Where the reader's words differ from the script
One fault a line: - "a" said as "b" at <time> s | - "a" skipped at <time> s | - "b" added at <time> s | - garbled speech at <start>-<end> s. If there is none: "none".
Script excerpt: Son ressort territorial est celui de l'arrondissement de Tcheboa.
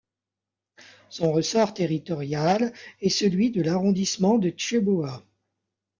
none